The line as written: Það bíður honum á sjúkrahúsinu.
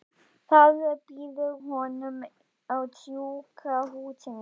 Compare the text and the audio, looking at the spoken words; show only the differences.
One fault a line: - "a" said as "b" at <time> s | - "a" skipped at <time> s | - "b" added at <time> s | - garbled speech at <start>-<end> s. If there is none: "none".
none